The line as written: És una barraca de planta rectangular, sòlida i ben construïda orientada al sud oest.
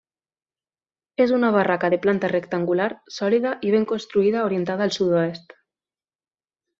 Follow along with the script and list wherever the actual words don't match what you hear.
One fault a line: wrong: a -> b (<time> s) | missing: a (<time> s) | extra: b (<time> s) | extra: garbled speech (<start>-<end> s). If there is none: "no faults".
no faults